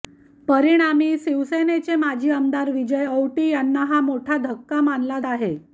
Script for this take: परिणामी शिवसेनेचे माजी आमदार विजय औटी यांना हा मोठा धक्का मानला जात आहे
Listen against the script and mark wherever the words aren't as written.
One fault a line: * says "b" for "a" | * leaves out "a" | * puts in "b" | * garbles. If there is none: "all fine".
* leaves out "जात"